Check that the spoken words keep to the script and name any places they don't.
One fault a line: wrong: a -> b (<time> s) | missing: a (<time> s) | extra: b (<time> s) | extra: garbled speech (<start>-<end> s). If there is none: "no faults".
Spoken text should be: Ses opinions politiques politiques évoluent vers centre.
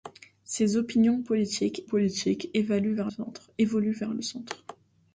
no faults